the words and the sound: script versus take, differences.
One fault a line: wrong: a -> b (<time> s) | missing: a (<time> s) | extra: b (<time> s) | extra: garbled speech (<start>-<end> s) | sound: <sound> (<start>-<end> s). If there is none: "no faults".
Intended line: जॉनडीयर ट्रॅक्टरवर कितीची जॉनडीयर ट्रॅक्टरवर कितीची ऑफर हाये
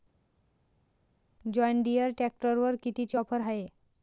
missing: जॉनडीयर ट्रॅक्टरवर कितीची (3.2 s)